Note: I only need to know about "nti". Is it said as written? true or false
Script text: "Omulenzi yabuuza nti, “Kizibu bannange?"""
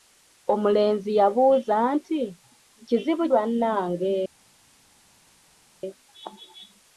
true